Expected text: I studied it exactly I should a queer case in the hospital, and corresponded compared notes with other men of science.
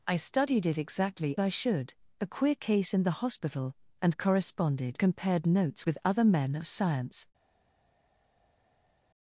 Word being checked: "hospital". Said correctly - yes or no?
yes